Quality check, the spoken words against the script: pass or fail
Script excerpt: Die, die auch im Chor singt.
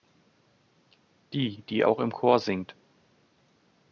pass